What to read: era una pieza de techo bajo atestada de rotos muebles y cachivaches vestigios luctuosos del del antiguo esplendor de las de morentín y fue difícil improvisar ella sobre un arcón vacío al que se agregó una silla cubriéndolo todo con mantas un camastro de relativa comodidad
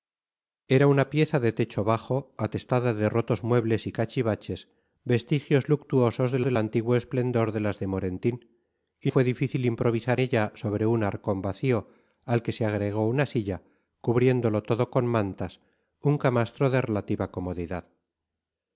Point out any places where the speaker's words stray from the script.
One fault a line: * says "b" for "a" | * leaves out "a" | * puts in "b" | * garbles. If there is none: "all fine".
all fine